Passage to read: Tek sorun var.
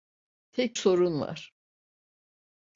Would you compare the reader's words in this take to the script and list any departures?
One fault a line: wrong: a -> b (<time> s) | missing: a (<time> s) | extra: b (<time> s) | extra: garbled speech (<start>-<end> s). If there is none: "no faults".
no faults